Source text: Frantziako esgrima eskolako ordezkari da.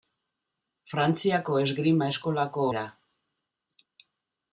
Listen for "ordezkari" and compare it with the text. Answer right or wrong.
wrong